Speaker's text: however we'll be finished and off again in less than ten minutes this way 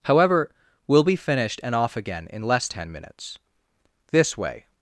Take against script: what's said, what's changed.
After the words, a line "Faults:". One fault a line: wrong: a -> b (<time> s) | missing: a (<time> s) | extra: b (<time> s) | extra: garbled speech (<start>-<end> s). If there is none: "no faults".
however we'll be finished and off again in less ten minutes this way
Faults:
missing: than (2.7 s)